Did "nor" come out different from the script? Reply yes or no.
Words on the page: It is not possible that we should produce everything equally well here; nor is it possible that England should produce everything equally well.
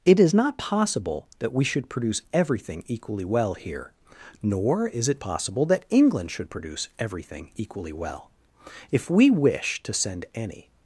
no